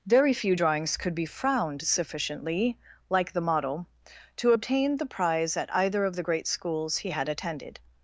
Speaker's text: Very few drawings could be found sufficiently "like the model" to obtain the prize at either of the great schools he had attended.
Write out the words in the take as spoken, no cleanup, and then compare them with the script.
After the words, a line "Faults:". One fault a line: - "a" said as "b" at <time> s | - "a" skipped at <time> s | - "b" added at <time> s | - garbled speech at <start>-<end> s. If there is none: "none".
Very few drawings could be frowned sufficiently "like the model" to obtain the prize at either of the great schools he had attended.
Faults:
- "found" said as "frowned" at 1.2 s